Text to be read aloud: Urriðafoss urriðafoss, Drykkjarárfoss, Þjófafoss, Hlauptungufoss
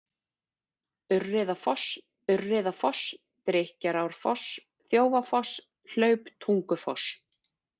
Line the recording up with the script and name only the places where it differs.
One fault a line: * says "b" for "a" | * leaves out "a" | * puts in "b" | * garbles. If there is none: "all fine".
all fine